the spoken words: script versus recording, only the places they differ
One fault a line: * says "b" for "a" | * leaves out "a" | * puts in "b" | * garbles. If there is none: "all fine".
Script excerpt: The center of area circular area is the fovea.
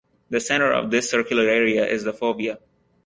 * says "this" for "area"